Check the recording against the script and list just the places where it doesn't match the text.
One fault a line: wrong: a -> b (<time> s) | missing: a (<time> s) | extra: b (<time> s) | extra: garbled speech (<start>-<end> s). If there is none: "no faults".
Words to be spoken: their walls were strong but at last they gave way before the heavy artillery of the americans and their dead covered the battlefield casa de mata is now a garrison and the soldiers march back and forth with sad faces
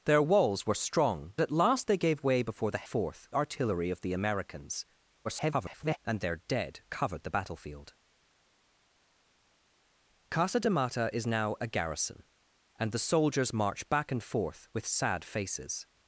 missing: but (1.3 s)
wrong: heavy -> forth (2.8 s)
extra: garbled speech (5.2-6.0 s)